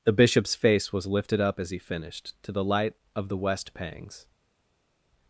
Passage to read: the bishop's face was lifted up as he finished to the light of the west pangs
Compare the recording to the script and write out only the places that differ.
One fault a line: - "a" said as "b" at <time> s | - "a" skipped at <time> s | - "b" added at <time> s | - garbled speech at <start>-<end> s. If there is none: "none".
none